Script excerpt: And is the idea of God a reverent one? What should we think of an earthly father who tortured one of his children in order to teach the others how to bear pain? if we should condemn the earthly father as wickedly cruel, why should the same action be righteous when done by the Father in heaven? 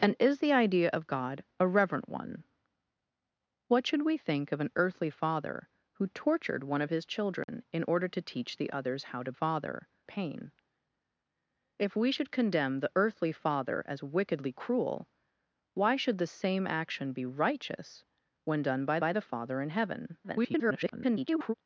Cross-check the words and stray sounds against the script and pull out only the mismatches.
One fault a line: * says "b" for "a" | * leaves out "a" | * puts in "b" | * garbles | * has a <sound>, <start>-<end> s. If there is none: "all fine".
* has a dropout, 7.4-7.5 s
* says "father" for "bear"
* puts in "by"
* garbles